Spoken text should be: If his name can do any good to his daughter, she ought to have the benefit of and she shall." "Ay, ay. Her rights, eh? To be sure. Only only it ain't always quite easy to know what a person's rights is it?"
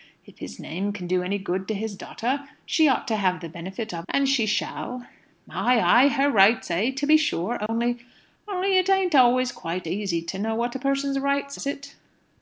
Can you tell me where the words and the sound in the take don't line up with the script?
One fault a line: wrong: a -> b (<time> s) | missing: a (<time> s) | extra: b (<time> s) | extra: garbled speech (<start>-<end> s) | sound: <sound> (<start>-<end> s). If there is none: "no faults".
sound: dropout (7.7-7.7 s)